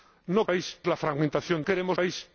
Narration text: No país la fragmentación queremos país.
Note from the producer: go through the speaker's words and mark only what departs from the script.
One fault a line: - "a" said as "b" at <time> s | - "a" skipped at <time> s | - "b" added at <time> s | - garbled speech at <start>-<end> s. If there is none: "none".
none